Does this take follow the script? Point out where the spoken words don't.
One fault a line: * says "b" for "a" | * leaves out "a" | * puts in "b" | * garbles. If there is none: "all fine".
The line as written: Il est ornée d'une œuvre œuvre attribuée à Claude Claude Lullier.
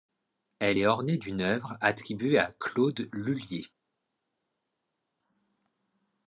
* says "Elle" for "Il"
* leaves out "œuvre"
* leaves out "Claude"